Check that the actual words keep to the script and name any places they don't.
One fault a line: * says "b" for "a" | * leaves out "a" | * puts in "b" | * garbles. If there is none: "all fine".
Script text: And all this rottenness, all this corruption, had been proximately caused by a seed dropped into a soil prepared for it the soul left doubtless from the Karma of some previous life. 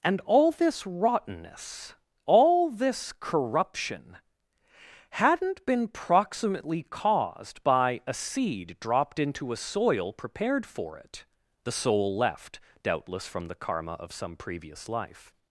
* says "hadn't" for "had"